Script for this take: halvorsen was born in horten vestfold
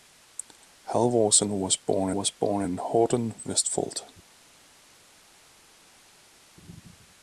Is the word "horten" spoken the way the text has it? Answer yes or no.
yes